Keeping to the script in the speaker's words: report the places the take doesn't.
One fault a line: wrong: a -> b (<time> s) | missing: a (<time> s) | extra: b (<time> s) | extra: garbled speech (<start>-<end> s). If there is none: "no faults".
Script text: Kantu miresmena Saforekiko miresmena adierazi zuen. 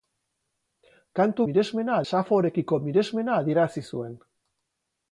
no faults